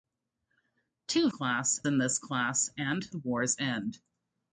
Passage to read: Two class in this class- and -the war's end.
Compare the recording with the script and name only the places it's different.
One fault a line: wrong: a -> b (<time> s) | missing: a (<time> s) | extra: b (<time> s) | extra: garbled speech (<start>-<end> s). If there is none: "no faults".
no faults